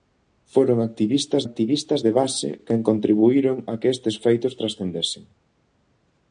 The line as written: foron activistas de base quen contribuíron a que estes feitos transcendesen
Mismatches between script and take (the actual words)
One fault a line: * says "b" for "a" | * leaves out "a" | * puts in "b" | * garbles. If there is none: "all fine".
* puts in "activistas"